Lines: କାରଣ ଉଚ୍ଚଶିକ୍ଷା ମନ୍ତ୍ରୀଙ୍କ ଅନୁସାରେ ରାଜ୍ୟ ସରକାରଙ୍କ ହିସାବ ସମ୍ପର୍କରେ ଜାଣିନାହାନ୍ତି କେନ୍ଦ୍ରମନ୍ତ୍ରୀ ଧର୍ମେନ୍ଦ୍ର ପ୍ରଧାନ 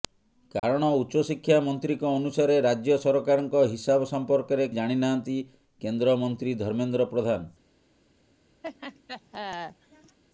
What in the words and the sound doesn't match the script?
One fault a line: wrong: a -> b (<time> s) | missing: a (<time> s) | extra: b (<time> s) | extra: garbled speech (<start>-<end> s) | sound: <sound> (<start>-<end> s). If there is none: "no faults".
sound: dropout (0.6-0.6 s)
sound: laugh (8.6-10.2 s)